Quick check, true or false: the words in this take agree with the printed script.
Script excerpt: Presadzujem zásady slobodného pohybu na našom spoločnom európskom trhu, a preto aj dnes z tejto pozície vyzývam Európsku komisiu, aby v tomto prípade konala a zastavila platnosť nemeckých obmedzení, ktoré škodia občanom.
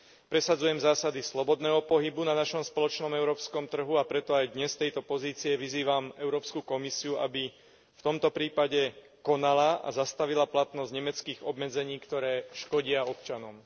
true